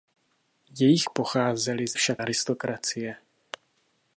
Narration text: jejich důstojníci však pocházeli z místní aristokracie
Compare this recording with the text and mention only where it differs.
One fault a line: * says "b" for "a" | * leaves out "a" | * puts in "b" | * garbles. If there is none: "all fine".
* leaves out "důstojníci však"
* says "však" for "místní"